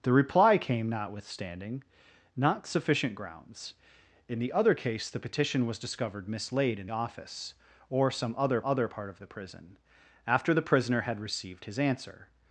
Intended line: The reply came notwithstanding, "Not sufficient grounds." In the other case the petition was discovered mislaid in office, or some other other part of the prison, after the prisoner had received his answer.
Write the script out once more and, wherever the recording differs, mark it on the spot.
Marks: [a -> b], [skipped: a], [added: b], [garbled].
The reply came notwithstanding, "Not sufficient grounds." In the other case the petition was discovered mislaid in office, or some other other part of the prison, after the prisoner had received his answer.